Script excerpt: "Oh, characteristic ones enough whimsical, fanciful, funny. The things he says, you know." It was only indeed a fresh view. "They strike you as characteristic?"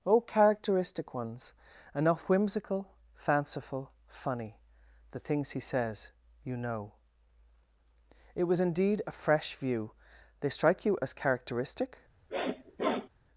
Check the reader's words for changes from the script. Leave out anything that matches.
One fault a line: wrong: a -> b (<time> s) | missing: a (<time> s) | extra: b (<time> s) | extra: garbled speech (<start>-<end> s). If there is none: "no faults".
missing: only (8.6 s)